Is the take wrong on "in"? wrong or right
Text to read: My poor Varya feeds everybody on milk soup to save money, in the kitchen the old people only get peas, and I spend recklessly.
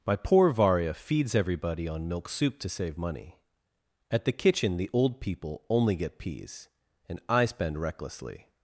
wrong